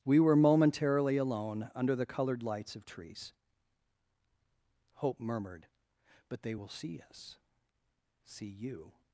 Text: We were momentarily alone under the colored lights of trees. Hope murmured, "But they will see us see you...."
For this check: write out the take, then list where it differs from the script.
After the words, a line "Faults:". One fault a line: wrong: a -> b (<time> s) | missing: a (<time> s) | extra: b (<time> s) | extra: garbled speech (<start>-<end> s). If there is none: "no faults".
We were momentarily alone under the colored lights of trees. Hope murmured, "But they will see us see you...."
Faults:
no faults